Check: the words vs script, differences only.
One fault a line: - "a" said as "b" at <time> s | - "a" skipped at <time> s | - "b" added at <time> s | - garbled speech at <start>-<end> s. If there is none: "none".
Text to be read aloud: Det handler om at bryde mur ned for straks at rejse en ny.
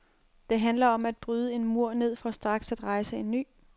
- "en" added at 1.5 s